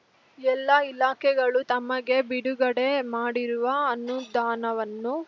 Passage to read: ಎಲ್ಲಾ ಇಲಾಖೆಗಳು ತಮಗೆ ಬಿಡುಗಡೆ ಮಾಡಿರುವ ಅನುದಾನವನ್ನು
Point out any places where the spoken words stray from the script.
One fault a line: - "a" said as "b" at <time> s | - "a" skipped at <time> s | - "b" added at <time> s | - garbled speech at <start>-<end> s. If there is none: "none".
none